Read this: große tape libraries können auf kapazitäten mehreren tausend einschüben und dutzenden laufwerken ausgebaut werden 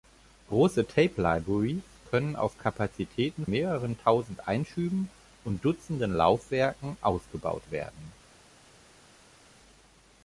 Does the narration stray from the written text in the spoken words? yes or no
no